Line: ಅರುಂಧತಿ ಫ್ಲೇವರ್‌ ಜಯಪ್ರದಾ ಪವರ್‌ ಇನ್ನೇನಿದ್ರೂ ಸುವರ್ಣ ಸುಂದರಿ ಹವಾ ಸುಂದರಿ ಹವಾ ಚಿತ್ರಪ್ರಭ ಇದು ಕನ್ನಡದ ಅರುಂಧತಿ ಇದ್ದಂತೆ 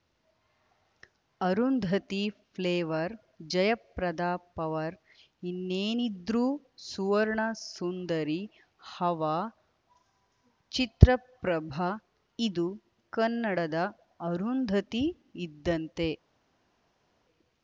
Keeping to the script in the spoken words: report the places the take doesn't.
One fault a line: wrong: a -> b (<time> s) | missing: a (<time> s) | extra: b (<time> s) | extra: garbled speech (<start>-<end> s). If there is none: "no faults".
missing: ಸುಂದರಿ ಹವಾ (9.3 s)